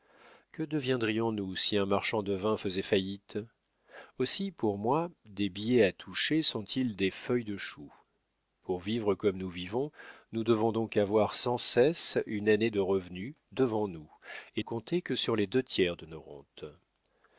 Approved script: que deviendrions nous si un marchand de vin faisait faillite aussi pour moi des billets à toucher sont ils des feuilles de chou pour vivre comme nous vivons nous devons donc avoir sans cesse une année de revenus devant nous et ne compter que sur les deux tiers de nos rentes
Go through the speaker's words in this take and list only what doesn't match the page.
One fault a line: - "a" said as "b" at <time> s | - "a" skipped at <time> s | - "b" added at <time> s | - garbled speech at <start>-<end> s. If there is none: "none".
- "ne" skipped at 14.6 s